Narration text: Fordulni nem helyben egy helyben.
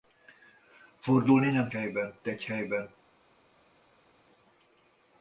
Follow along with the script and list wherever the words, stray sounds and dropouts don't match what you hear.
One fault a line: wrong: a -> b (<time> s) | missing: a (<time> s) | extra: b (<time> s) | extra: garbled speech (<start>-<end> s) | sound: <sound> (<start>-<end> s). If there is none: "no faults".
no faults